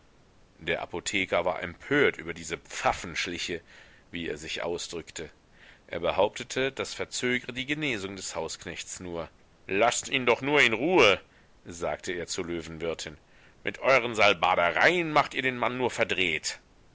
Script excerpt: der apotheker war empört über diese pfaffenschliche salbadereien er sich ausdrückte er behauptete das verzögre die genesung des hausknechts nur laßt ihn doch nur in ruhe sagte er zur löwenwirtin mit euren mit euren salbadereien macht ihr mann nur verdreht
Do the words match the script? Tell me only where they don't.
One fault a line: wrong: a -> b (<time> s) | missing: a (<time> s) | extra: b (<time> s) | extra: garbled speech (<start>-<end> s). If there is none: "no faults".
wrong: salbadereien -> wie (4.1 s)
missing: mit euren (14.2 s)
extra: den (15.4 s)